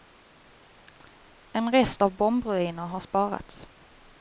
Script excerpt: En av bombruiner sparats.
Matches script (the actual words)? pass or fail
fail